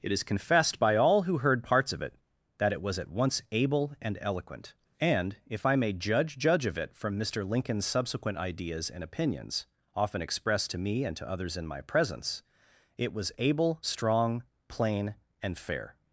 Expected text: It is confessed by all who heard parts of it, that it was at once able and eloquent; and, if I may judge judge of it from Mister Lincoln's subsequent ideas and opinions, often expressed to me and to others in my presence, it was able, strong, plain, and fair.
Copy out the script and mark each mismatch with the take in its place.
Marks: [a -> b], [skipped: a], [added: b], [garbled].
It is confessed by all who heard parts of it, that it was at once able and eloquent; and, if I may judge judge of it from Mister Lincoln's subsequent ideas and opinions, often expressed to me and to others in my presence, it was able, strong, plain, and fair.